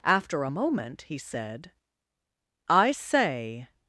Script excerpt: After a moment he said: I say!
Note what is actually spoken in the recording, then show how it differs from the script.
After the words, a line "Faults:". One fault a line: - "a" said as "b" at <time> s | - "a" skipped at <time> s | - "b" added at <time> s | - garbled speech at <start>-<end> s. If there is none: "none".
After a moment he said: I say!
Faults:
none